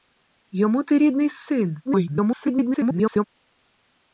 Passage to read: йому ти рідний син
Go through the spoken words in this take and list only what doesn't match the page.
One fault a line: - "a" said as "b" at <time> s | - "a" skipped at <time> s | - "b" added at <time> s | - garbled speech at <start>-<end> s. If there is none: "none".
- garbled speech at 1.9-3.2 s